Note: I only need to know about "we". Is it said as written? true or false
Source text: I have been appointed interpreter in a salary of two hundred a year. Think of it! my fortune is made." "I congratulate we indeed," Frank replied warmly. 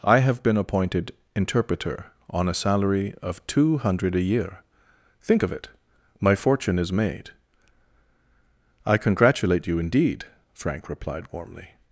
false